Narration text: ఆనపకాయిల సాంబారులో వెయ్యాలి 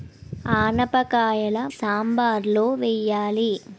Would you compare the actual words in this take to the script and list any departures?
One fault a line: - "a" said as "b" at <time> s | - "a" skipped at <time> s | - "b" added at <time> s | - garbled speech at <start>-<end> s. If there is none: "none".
none